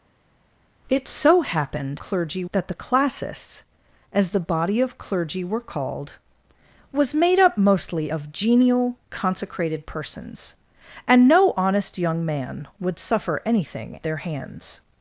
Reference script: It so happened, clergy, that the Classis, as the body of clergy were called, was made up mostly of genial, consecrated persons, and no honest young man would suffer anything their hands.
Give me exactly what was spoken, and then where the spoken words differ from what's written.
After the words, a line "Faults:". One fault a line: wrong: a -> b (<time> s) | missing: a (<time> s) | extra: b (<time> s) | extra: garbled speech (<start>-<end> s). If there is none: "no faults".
It so happened, clergy, that the Classis, as the body of clergy were called, was made up mostly of genial, consecrated persons, and no honest young man would suffer anything their hands.
Faults:
no faults